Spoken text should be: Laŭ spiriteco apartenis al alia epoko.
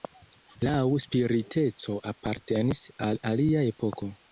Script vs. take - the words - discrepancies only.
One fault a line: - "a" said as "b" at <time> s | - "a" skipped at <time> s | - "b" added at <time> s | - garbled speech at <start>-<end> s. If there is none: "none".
none